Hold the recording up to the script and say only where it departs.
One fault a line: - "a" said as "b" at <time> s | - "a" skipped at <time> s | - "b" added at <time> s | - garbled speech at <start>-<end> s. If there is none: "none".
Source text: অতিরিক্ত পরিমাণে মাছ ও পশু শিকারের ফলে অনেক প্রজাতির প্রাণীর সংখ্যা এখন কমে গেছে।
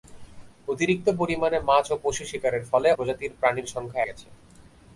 - "অনেক" skipped at 2.9 s
- "এখন কমে" skipped at 4.0 s